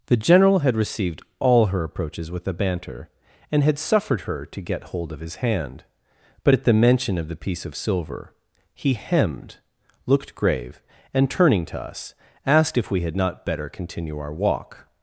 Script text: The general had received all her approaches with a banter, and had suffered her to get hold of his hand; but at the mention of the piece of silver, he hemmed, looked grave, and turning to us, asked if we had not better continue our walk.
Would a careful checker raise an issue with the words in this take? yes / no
no